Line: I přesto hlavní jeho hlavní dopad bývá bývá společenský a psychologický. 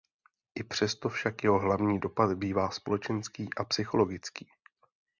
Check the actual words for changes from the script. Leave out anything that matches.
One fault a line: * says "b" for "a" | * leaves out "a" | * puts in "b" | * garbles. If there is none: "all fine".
* says "však" for "hlavní"
* leaves out "bývá"